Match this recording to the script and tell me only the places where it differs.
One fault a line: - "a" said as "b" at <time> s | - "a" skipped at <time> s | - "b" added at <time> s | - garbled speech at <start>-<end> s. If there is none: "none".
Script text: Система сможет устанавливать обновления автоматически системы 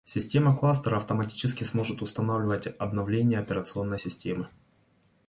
- "кластера автоматически" added at 0.6 s
- "автоматически" said as "операционной" at 3.4 s